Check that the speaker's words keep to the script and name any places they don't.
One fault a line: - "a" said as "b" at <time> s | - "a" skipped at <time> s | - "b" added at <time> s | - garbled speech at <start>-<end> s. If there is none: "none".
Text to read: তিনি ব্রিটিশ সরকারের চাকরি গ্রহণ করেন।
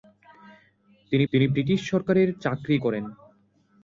- "তিনি" added at 1.3 s
- "গ্রহণ" skipped at 2.8 s